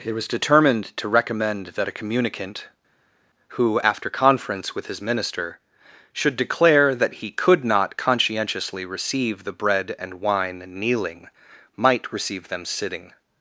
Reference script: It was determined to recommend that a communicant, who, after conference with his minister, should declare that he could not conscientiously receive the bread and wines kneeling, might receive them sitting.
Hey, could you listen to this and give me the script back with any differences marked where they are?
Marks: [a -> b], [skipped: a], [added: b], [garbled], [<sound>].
It was determined to recommend that a communicant, who, after conference with his minister, should declare that he could not conscientiously receive the bread and [wines -> wine] kneeling, might receive them sitting.